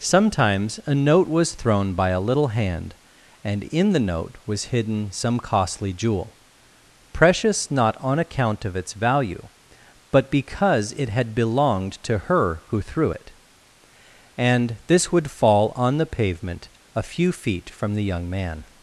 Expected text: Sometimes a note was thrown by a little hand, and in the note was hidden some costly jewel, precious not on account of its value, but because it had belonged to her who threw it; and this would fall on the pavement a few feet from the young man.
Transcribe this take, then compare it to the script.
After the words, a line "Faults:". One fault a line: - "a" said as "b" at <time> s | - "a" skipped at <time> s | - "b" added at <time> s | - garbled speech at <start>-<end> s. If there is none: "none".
Sometimes a note was thrown by a little hand, and in the note was hidden some costly jewel, precious not on account of its value, but because it had belonged to her who threw it; and this would fall on the pavement a few feet from the young man.
Faults:
none